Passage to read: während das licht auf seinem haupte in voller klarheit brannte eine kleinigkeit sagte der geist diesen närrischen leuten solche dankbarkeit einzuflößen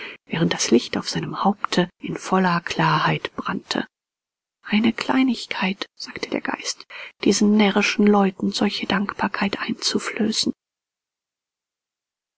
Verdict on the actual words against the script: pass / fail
pass